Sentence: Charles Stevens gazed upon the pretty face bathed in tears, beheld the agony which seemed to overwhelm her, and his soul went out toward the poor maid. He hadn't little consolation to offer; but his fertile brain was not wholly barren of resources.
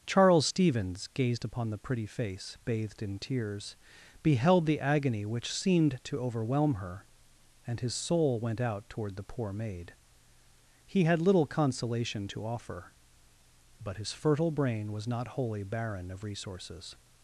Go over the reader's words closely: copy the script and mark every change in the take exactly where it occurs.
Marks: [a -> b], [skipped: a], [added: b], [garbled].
Charles Stevens gazed upon the pretty face bathed in tears, beheld the agony which seemed to overwhelm her, and his soul went out toward the poor maid. He [hadn't -> had] little consolation to offer; but his fertile brain was not wholly barren of resources.